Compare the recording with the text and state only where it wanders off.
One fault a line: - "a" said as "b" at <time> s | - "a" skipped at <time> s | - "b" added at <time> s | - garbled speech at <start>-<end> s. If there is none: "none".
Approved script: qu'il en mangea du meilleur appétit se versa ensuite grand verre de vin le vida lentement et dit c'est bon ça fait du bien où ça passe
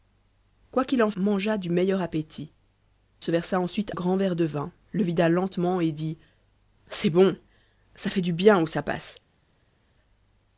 none